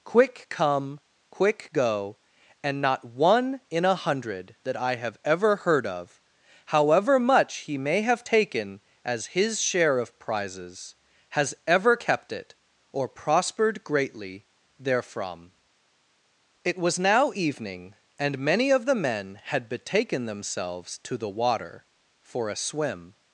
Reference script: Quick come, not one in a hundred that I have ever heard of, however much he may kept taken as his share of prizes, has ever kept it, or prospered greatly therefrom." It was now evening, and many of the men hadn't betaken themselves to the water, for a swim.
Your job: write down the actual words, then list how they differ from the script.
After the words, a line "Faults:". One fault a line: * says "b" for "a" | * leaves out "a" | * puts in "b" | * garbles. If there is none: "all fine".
Quick come, quick go, and not one in a hundred that I have ever heard of, however much he may have taken as his share of prizes, has ever kept it, or prospered greatly therefrom." It was now evening, and many of the men had betaken themselves to the water, for a swim.
Faults:
* puts in "quick go and"
* says "have" for "kept"
* says "had" for "hadn't"